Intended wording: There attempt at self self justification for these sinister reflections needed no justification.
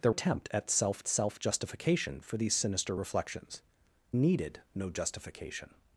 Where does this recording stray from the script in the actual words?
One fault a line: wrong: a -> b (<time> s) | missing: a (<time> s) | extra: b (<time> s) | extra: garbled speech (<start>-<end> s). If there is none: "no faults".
no faults